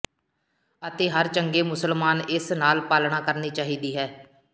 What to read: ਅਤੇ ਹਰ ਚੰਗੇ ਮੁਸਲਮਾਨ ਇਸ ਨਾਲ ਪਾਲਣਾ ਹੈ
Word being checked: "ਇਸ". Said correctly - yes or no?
yes